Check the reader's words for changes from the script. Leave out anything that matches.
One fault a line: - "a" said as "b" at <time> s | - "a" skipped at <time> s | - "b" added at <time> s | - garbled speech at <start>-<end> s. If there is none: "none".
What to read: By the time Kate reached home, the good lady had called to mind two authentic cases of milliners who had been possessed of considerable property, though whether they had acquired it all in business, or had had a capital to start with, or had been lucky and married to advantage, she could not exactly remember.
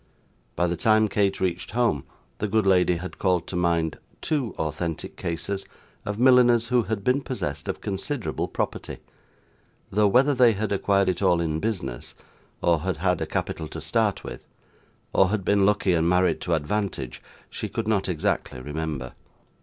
none